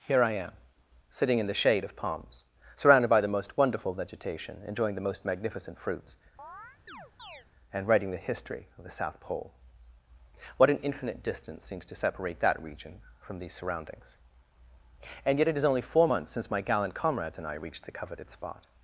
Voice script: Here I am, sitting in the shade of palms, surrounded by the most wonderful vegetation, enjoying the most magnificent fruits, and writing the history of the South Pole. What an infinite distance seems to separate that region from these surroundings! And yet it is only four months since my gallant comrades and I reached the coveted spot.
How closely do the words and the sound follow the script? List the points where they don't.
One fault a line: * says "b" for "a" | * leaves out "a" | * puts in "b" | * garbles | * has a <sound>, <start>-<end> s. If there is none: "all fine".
* has a chirp, 6.4-7.5 s